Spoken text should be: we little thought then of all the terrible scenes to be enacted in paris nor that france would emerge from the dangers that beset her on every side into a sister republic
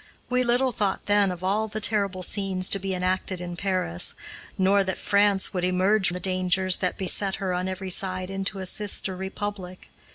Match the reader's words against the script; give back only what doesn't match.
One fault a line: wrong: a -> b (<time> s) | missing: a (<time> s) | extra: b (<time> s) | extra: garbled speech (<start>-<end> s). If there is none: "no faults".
missing: from (6.1 s)